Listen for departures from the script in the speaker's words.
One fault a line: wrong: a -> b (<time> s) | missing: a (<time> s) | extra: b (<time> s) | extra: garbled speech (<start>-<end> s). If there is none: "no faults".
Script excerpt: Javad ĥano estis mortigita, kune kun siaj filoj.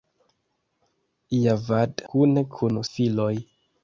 missing: ĥano estis mortigita (2.0 s)
missing: siaj (2.8 s)